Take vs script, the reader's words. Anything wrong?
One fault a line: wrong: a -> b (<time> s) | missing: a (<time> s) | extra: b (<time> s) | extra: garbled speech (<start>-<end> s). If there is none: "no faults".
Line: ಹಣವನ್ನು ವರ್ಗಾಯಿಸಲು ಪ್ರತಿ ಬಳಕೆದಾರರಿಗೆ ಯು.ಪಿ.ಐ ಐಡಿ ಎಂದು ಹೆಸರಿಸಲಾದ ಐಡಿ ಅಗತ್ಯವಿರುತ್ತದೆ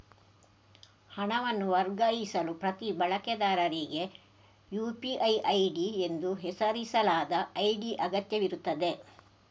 no faults